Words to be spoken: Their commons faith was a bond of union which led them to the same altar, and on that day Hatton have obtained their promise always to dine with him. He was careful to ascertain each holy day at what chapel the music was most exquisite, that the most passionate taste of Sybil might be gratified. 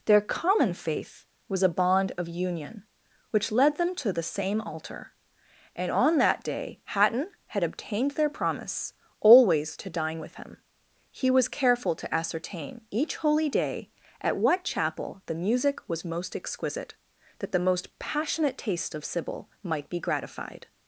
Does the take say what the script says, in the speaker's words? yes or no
no